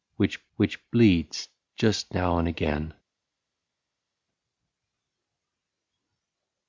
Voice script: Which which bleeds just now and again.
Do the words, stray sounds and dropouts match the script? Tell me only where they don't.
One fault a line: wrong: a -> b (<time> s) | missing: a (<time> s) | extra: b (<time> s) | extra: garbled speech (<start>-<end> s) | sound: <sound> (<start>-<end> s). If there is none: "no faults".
no faults